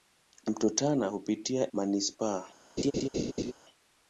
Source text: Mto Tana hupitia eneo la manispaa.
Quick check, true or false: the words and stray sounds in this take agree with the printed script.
false